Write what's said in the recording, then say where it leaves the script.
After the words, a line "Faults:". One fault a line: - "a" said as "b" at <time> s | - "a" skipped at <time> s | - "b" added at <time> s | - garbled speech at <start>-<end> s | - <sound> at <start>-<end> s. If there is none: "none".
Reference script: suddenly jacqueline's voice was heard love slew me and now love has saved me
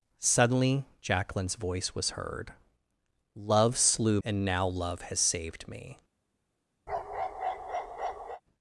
suddenly jacqueline's voice was heard love slew and now love has saved me
Faults:
- "me" skipped at 4.2 s
- bark at 6.9-8.4 s